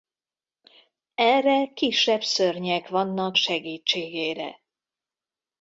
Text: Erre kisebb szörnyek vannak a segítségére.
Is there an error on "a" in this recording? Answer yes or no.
yes